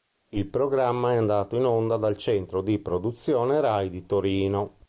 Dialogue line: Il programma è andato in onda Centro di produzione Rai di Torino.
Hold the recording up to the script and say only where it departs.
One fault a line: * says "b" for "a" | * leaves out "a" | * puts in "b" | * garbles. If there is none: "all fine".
* puts in "dal"